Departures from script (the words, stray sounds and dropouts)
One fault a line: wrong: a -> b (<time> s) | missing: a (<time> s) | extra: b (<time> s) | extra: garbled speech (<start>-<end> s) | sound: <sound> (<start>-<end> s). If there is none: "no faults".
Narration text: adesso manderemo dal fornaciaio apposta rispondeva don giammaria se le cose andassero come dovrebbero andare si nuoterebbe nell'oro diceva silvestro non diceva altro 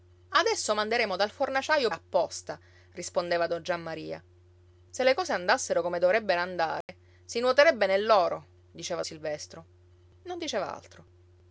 sound: dropout (6.8-6.9 s)